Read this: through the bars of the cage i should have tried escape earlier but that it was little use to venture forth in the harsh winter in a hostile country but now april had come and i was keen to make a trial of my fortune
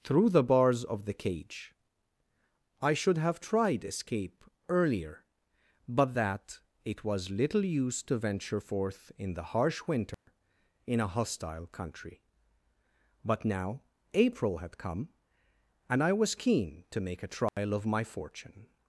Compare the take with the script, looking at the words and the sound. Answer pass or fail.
fail